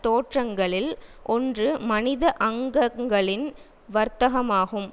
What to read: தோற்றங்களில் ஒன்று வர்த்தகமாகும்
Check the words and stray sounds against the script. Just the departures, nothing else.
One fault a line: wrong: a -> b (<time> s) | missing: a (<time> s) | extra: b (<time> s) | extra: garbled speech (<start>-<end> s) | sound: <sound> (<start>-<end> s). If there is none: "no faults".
extra: மனித அங்கங்களின் (1.8 s)